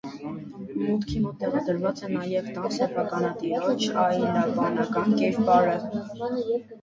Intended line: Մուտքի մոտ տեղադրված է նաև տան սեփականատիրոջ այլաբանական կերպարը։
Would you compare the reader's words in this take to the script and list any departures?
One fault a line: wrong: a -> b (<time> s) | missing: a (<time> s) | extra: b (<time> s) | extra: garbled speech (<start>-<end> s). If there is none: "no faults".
no faults